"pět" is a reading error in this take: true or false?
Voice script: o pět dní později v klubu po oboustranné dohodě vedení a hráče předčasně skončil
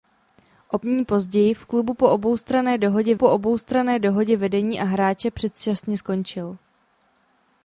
true